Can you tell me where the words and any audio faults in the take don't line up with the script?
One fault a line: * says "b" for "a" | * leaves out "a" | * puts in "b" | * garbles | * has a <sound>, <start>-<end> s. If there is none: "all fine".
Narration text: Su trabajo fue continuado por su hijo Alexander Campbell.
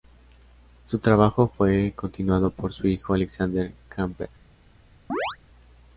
* has a chirp, 5.1-5.4 s